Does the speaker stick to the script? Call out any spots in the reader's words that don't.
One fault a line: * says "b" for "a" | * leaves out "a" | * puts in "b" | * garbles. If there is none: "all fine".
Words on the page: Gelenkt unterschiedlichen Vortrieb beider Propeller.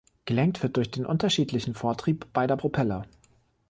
* puts in "wird durch den"